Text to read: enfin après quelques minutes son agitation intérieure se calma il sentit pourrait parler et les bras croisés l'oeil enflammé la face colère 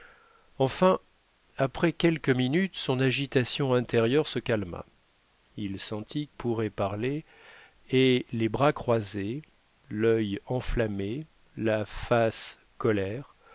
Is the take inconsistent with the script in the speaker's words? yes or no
no